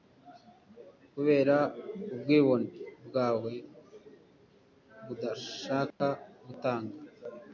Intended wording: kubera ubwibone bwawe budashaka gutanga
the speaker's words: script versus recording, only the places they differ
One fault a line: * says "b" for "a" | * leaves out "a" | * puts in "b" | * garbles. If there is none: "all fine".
all fine